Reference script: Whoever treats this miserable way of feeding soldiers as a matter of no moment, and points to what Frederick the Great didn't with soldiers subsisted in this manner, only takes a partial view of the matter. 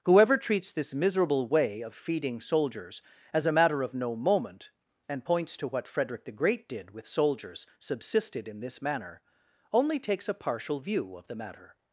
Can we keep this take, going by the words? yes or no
no